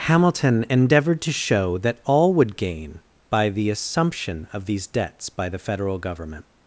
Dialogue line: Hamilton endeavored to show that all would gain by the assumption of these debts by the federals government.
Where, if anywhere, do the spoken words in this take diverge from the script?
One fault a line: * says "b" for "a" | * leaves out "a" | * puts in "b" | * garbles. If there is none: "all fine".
* says "federal" for "federals"